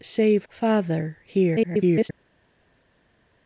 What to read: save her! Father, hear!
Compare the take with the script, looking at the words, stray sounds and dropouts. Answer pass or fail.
fail